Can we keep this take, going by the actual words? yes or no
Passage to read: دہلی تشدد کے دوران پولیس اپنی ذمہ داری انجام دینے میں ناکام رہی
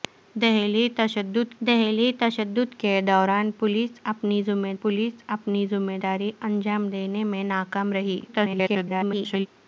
no